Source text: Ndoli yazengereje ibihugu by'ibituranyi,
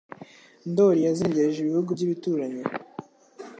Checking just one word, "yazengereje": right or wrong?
right